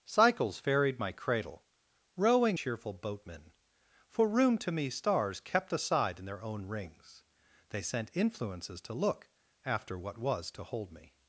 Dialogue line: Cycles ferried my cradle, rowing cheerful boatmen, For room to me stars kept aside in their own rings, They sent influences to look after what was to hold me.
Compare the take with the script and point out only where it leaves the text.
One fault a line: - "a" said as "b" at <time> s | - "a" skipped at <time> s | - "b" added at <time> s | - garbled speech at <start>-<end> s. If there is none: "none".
none